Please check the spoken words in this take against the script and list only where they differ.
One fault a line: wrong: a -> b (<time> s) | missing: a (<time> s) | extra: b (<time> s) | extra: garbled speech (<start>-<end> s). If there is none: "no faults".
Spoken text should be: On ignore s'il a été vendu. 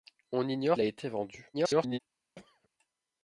missing: s'il (0.8 s)
extra: garbled speech (1.5-2.0 s)